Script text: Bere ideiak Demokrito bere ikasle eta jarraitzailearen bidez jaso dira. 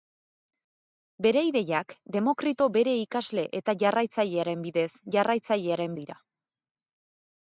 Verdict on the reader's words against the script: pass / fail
fail